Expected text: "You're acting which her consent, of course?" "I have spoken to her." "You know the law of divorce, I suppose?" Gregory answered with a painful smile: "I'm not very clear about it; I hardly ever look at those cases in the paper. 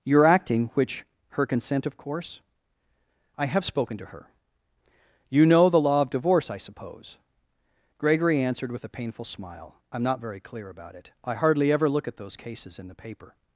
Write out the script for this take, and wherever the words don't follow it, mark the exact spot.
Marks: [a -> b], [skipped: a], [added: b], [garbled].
"You're acting which her consent, of course?" "I have spoken to her." "You know the law of divorce, I suppose?" Gregory answered with a painful smile: "I'm not very clear about it; I hardly ever look at those cases in the paper.